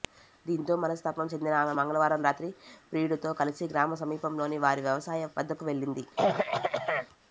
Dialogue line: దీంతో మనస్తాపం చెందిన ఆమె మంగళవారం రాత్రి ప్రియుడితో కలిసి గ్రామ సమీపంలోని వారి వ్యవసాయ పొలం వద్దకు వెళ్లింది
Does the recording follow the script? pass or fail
fail